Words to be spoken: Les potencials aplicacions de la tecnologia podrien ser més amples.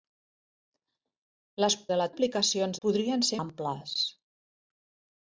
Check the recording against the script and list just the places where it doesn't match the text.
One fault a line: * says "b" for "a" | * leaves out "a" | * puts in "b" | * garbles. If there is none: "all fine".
* leaves out "potencials aplicacions"
* says "aplicacions" for "tecnologia"
* leaves out "més"